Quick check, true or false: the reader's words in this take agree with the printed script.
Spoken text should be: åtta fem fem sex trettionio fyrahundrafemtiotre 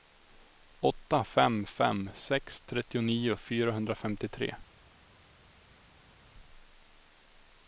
true